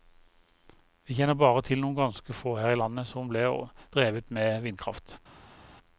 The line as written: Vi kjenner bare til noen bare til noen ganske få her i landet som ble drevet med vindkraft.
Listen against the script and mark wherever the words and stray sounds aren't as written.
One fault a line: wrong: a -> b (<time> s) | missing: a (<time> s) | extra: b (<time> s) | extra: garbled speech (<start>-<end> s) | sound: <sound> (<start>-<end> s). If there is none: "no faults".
missing: bare til noen (2.0 s)